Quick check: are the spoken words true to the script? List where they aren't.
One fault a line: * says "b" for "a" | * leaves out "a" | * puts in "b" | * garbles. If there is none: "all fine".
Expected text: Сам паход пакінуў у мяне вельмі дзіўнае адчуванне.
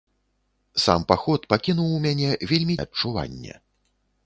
* leaves out "дзіўнае"